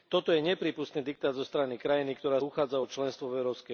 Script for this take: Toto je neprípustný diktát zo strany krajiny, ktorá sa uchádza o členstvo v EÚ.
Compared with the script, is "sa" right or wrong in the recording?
wrong